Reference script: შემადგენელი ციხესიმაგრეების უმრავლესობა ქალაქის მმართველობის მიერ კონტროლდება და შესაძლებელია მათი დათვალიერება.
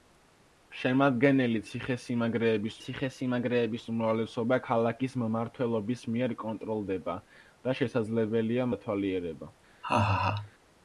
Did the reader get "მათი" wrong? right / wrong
wrong